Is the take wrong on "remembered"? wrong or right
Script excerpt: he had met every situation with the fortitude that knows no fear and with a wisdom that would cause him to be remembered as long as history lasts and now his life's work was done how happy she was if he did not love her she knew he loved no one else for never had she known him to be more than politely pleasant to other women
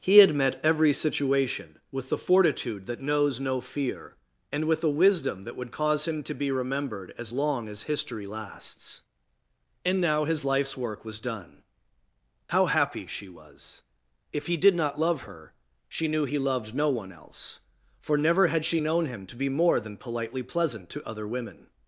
right